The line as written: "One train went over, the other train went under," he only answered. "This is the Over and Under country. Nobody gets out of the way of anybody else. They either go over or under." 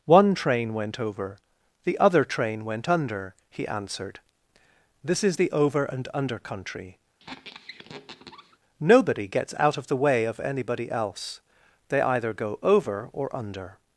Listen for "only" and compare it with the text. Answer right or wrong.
wrong